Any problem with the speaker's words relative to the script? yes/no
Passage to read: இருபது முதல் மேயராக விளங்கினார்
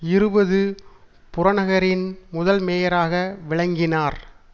yes